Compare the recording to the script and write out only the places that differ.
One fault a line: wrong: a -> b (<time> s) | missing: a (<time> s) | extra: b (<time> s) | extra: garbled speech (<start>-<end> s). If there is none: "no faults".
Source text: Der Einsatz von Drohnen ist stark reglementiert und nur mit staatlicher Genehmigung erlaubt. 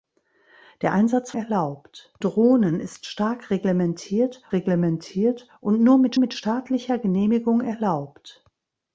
wrong: von -> erlaubt (1.3 s)
extra: reglementiert (4.5 s)
extra: mit (6.1 s)